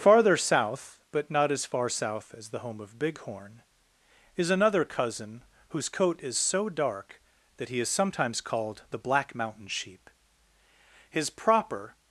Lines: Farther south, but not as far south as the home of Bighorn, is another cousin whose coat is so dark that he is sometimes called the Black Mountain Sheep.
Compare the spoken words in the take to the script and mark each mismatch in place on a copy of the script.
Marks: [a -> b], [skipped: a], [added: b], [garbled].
Farther south, but not as far south as the home of Bighorn, is another cousin whose coat is so dark that he is sometimes called the Black Mountain Sheep. [added: His proper]